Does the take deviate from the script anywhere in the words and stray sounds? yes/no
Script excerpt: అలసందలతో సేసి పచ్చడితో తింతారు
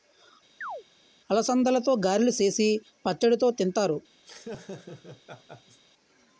yes